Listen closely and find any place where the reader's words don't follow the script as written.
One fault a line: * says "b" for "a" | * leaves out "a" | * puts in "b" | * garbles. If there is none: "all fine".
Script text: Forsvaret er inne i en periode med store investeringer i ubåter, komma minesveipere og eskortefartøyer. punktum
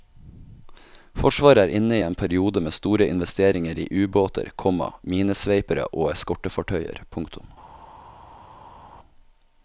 all fine